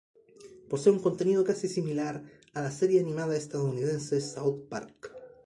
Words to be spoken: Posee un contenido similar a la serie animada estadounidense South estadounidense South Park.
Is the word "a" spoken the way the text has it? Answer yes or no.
yes